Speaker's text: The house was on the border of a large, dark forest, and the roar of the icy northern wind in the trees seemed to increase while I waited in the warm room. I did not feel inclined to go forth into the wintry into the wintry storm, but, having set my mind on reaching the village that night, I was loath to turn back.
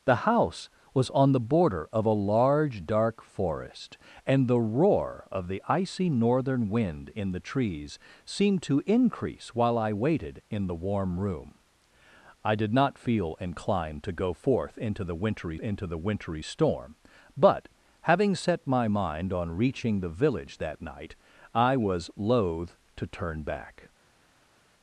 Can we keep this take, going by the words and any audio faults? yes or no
yes